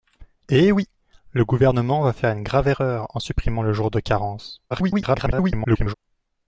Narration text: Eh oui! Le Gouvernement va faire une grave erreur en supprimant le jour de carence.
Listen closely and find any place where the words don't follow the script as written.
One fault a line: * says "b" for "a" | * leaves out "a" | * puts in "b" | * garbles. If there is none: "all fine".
* garbles